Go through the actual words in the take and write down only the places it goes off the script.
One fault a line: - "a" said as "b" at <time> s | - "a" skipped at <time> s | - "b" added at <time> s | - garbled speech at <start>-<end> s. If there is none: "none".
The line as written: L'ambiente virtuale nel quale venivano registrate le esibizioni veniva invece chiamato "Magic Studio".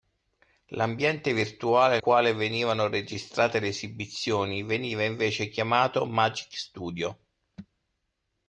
- "nel" skipped at 2.0 s